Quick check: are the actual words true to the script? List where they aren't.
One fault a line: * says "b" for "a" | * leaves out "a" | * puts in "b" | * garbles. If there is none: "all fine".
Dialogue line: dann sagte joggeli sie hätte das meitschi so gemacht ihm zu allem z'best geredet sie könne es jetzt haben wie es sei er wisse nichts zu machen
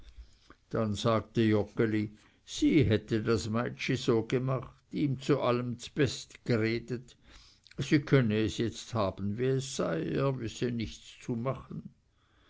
all fine